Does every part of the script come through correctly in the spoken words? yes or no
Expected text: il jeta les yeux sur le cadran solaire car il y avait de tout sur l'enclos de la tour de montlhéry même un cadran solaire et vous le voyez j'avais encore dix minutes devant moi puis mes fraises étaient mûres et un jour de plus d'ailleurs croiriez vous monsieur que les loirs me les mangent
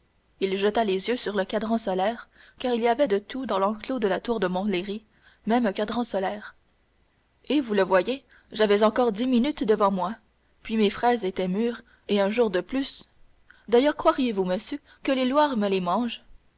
no